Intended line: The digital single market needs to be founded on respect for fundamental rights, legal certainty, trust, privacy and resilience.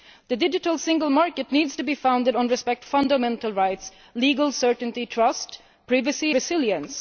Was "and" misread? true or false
true